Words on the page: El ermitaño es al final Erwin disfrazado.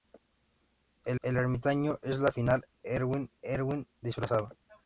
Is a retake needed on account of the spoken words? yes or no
yes